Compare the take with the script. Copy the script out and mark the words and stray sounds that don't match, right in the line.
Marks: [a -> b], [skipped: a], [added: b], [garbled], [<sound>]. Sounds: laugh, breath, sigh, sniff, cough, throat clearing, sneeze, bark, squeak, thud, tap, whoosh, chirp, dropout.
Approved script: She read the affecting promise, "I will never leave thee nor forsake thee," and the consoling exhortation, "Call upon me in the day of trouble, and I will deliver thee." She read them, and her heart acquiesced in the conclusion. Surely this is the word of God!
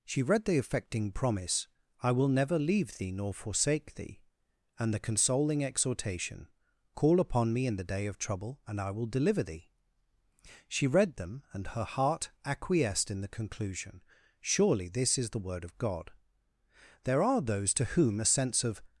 She read the affecting promise, "I will never leave thee nor forsake thee," and the consoling exhortation, "Call upon me in the day of trouble, and I will deliver thee." She read them, and her heart acquiesced in the conclusion. Surely this is the word of God! [added: There are those to whom a sense of]